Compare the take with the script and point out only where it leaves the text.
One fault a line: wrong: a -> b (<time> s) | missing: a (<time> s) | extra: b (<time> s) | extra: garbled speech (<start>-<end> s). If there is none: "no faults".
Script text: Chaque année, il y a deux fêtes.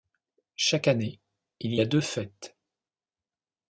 missing: y (1.8 s)